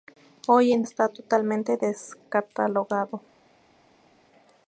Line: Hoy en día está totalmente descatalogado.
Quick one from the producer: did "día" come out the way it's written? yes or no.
no